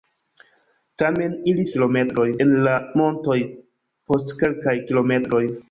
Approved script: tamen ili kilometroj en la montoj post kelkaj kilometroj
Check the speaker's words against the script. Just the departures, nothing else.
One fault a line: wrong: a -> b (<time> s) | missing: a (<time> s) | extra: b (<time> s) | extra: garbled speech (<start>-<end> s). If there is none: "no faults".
no faults